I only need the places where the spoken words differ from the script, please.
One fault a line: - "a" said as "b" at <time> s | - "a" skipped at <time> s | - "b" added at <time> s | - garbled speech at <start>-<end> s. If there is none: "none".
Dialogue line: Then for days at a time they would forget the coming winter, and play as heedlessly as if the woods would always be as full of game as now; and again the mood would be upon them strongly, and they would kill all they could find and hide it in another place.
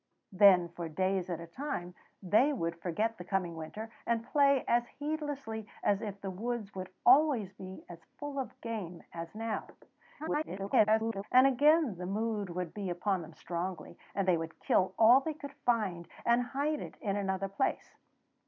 - garbled speech at 10.2-11.2 s